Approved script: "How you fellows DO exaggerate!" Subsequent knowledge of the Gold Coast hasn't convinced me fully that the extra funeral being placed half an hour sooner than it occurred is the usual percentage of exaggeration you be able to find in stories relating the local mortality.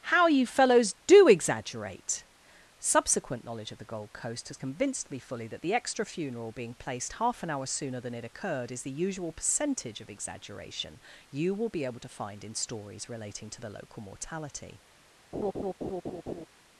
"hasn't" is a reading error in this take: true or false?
true